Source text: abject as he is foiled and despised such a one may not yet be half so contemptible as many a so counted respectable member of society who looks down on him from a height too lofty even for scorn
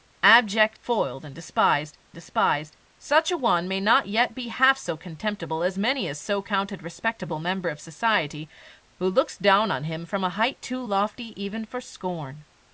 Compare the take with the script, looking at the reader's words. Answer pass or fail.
fail